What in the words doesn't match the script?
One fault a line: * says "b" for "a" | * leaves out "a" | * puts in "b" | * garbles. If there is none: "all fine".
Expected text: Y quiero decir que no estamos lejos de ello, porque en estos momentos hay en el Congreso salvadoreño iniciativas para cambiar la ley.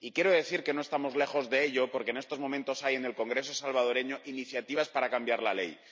all fine